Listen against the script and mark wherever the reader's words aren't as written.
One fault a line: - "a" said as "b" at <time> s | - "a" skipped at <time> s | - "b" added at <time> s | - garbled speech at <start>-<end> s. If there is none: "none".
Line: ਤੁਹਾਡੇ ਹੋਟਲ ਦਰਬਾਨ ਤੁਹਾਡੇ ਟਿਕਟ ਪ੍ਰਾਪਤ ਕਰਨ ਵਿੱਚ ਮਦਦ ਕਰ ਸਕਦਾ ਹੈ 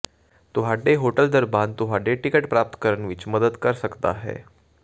none